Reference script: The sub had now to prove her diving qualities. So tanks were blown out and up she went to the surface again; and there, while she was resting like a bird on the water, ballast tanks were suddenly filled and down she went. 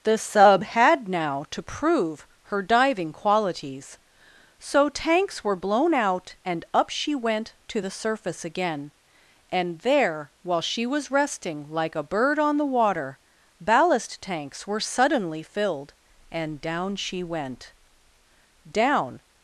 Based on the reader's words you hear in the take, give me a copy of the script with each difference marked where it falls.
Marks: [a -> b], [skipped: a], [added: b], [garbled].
The sub had now to prove her diving qualities. So tanks were blown out and up she went to the surface again; and there, while she was resting like a bird on the water, ballast tanks were suddenly filled and down she went. [added: Down]